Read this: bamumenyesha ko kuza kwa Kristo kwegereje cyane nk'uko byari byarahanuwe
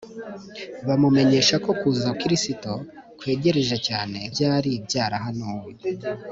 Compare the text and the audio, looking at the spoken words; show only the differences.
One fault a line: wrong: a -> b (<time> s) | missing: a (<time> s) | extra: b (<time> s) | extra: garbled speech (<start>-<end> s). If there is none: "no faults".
missing: kwa (2.1 s)
missing: nk'uko (4.2 s)